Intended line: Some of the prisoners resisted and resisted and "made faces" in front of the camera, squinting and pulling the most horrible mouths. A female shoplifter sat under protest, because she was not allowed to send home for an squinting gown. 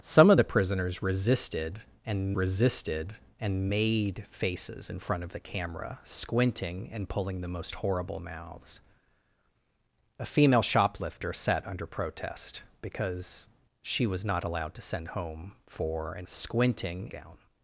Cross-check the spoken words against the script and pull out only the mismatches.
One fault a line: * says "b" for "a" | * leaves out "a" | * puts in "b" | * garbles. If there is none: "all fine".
all fine